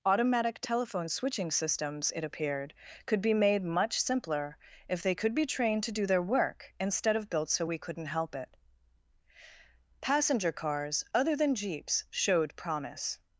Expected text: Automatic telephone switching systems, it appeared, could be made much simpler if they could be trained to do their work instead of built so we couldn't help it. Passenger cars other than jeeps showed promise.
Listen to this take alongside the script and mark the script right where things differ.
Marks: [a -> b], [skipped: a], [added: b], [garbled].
Automatic telephone switching systems, it appeared, could be made much simpler if they could be trained to do their work instead of built so we couldn't help it. Passenger cars other than jeeps showed promise.